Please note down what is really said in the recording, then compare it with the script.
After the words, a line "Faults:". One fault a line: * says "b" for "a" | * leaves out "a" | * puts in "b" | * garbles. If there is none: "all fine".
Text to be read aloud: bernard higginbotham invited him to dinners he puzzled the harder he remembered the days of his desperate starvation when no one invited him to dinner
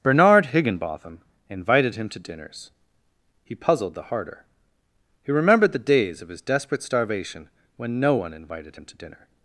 bernard higginbotham invited him to dinners he puzzled the harder he remembered the days of his desperate starvation when no one invited him to dinner
Faults:
all fine